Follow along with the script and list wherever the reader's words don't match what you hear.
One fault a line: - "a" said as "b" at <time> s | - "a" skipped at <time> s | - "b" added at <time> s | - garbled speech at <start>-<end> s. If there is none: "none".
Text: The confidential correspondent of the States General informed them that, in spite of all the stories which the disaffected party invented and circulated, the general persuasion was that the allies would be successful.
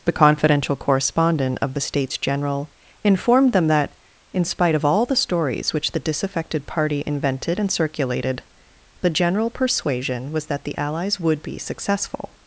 none